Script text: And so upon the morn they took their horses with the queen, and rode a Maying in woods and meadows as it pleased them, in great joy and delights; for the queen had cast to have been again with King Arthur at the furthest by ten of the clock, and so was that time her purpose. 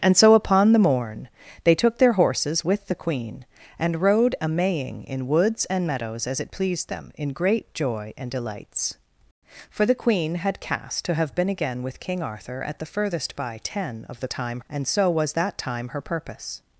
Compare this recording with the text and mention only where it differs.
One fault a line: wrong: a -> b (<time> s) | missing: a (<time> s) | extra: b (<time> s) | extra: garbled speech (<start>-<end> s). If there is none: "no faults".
wrong: clock -> time (14.3 s)